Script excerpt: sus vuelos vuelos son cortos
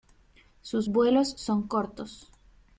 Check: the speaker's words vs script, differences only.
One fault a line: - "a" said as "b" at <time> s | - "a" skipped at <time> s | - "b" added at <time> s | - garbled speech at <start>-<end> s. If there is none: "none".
- "vuelos" skipped at 1.3 s